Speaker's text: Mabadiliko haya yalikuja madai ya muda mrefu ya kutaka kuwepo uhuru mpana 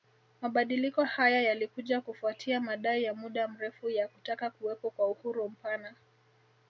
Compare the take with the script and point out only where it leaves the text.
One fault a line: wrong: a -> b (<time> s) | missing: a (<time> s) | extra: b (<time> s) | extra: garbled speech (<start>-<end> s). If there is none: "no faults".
extra: kufuatia (2.0 s)
extra: kwa (4.9 s)